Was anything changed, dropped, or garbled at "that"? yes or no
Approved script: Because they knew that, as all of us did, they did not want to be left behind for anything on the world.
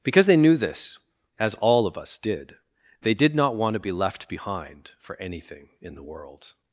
yes